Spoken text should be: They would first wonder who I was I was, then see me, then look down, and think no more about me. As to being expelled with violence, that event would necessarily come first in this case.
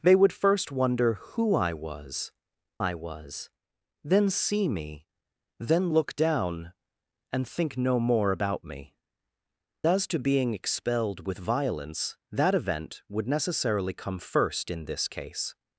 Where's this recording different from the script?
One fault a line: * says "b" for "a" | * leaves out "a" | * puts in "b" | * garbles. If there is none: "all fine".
all fine